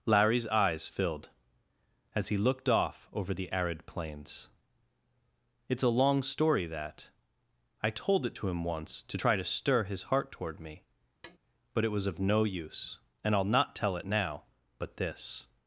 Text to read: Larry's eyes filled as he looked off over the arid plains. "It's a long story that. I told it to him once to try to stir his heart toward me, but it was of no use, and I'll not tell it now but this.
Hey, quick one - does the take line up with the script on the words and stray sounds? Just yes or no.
no